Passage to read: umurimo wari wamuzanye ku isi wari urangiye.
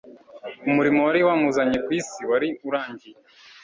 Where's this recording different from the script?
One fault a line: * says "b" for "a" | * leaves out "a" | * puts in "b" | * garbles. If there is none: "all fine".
all fine